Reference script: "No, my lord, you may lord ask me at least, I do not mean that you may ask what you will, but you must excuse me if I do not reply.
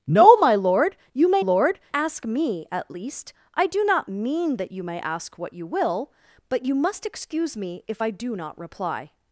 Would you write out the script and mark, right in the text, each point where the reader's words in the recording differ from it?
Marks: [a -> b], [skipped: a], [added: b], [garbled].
"No, my lord, you may lord ask me at least, I do not mean that you may ask what you will, but you must excuse me if I do not reply.